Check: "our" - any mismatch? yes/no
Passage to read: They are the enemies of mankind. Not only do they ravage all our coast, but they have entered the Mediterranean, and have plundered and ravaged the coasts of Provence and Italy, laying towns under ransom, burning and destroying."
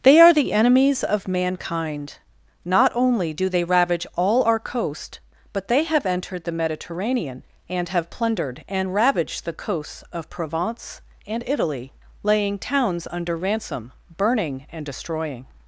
no